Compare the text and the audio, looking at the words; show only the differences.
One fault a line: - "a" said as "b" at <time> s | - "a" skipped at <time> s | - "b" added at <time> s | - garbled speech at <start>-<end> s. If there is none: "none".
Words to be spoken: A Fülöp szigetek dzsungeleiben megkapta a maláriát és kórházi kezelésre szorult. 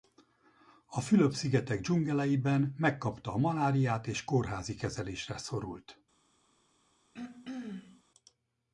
none